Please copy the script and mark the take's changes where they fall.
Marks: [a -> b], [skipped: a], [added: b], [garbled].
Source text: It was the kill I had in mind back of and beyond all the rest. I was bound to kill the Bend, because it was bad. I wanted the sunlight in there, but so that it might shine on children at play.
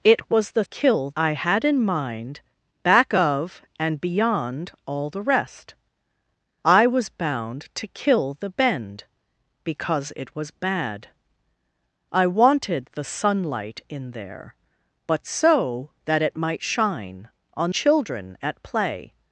It was the kill I had in mind back of and beyond all the rest. I was bound to kill the Bend, because it was bad. I wanted the sunlight in there, but so that it might shine on children at play.